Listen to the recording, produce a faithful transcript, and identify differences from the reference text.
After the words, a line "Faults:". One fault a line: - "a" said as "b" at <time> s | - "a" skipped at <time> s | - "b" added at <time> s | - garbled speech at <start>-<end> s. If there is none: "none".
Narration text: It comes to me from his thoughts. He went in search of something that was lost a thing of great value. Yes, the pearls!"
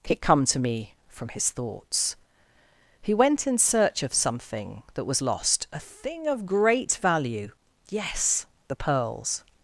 It come to me from his thoughts. He went in search of something that was lost a thing of great value. Yes, the pearls!"
Faults:
- "comes" said as "come" at 0.2 s